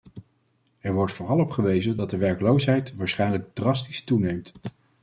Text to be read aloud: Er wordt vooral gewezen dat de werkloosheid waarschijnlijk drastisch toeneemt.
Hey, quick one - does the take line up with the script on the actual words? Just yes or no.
no